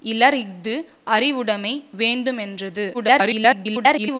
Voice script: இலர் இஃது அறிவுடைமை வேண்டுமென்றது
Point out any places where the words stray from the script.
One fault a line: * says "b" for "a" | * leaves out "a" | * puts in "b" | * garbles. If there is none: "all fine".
* garbles